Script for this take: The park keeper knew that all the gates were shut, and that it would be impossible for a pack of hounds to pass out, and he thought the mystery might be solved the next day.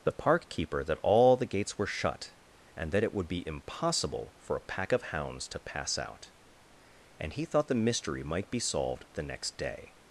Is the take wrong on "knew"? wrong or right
wrong